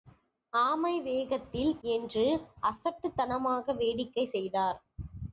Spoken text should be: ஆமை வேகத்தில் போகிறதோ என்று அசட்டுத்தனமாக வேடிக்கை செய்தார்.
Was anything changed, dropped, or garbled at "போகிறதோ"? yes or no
yes